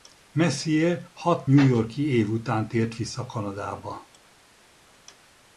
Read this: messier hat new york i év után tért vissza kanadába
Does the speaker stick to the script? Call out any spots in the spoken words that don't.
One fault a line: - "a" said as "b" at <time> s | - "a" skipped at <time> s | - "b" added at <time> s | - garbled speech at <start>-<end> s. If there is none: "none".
none